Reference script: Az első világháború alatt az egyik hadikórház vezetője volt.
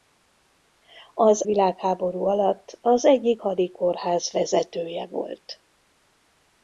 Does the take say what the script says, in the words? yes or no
no